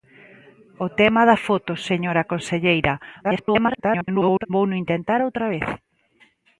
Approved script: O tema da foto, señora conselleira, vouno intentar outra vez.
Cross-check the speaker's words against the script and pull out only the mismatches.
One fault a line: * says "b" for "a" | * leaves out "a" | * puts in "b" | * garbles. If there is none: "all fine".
* garbles